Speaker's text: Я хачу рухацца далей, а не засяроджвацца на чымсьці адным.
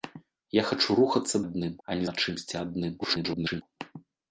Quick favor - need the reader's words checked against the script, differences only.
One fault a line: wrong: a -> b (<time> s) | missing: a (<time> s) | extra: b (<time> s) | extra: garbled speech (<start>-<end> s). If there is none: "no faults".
wrong: далей -> адным (1.4 s)
missing: засяроджвацца (2.1 s)
extra: garbled speech (3.0-3.6 s)